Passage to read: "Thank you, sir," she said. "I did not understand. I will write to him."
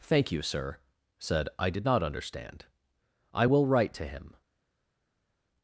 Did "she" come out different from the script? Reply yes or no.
yes